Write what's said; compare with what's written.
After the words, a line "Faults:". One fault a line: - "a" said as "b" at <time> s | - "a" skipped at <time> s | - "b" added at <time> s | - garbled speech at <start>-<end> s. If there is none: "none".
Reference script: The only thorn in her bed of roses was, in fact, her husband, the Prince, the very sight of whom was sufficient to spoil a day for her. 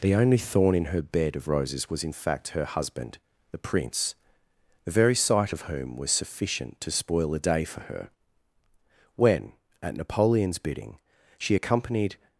The only thorn in her bed of roses was, in fact, her husband, the Prince, the very sight of whom was sufficient to spoil a day for her. When, at Napoleon's bidding, she accompanied
Faults:
- "When at Napoleon's bidding she accompanied" added at 9.2 s